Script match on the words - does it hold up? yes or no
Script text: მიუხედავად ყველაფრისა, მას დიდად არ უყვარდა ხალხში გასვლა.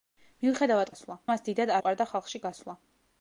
no